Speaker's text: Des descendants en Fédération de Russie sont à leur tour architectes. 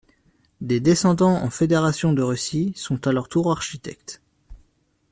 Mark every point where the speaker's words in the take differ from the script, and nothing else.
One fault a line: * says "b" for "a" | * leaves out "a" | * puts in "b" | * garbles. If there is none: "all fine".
all fine